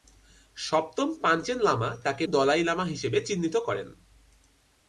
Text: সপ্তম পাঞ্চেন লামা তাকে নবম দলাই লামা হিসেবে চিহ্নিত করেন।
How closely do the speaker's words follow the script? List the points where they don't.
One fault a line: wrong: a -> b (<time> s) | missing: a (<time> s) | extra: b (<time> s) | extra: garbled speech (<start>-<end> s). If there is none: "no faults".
missing: নবম (2.2 s)